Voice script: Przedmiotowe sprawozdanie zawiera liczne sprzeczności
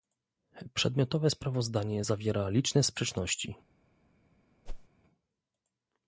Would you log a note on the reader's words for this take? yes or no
no